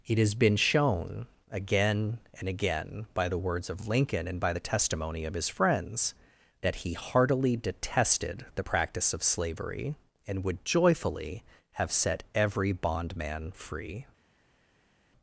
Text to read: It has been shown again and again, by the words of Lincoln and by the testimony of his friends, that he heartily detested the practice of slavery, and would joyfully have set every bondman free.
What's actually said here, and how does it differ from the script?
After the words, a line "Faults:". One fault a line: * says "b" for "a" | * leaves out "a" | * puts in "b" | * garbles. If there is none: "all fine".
It has been shown again and again, by the words of Lincoln and by the testimony of his friends, that he heartily detested the practice of slavery, and would joyfully have set every bondman free.
Faults:
all fine